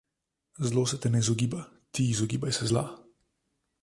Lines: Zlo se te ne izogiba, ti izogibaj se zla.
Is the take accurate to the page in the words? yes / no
yes